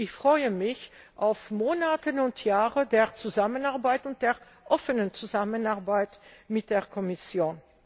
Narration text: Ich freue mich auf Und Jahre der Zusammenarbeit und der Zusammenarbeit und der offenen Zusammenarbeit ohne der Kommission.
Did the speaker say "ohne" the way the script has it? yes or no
no